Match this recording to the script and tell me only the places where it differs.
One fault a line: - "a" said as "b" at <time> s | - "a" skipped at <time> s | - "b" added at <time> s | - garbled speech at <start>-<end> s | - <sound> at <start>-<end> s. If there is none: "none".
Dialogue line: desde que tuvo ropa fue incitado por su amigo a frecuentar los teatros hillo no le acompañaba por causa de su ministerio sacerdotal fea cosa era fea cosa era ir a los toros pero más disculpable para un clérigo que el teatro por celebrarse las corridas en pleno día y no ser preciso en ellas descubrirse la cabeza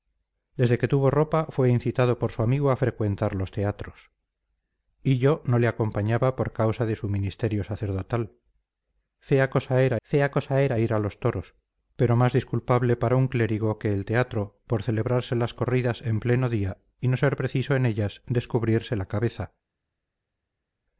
none